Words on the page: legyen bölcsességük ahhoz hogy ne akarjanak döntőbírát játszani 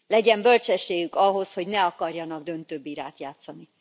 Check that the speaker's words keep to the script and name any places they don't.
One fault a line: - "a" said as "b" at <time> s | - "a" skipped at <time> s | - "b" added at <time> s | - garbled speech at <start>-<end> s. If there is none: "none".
none